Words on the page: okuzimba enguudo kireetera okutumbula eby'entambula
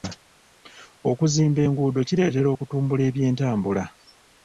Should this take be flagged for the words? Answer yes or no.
no